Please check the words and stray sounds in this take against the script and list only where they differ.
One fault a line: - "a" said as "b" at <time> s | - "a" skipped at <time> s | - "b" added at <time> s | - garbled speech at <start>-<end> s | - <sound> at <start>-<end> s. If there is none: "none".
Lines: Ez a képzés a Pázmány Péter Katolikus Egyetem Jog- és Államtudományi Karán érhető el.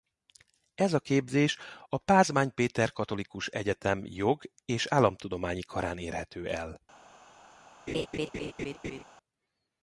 - laugh at 7.9-9.0 s